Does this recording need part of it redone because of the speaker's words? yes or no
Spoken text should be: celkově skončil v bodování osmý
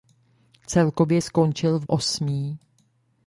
yes